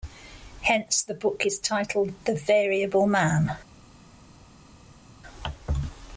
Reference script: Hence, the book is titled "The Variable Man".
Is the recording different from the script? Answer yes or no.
no